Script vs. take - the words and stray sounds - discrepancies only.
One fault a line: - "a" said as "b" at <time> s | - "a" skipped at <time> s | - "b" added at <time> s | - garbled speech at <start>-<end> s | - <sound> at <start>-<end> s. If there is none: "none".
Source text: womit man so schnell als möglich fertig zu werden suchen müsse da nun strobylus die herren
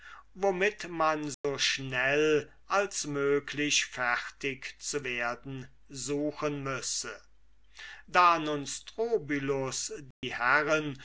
- dropout at 1.3-1.4 s
- dropout at 10.1-10.2 s